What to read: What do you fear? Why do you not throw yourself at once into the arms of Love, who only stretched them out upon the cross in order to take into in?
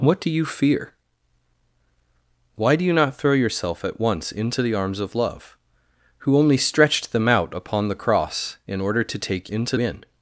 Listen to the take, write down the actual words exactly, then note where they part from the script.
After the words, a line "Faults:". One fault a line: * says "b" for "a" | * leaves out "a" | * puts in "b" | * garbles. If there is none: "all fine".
What do you fear? Why do you not throw yourself at once into the arms of Love, who only stretched them out upon the cross in order to take into in?
Faults:
all fine